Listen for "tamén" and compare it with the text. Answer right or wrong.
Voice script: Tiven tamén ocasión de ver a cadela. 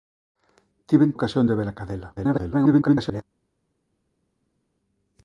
wrong